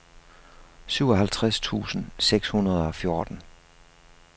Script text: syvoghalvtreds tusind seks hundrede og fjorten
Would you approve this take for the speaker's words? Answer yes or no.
yes